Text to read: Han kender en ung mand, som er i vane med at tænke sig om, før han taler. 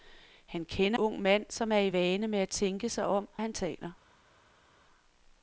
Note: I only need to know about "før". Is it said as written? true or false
false